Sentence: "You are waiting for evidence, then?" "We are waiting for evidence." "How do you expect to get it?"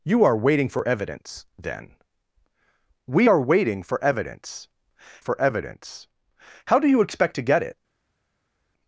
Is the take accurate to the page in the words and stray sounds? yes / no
no